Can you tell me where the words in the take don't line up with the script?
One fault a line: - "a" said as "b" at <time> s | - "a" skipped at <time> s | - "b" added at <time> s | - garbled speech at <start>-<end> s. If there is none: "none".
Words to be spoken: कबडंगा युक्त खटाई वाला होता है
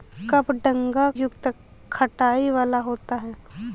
none